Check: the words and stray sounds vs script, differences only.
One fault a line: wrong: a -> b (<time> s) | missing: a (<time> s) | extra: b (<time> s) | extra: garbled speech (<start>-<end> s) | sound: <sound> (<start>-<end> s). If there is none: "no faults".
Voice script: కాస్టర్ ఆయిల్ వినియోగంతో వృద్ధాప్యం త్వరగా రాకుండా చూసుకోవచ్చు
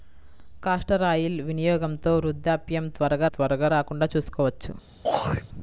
extra: త్వరగా (3.3 s)
sound: throat clearing (5.0-5.5 s)